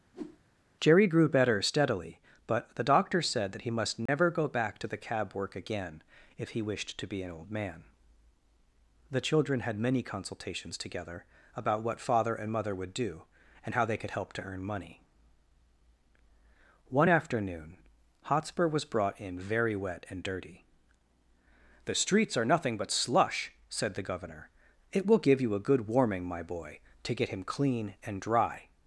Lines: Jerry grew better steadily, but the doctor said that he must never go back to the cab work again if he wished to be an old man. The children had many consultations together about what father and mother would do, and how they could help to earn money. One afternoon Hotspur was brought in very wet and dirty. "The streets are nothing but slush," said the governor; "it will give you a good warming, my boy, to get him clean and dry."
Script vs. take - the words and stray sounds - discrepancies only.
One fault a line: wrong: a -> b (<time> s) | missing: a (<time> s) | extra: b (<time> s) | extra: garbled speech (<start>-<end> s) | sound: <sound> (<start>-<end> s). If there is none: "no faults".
sound: whoosh (0.1-0.4 s)
sound: dropout (4.1-4.1 s)